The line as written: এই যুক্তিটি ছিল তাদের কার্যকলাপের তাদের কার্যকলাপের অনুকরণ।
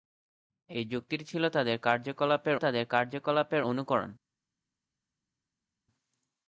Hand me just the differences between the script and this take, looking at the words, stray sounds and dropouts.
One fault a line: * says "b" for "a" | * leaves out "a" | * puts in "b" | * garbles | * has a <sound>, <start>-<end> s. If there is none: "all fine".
all fine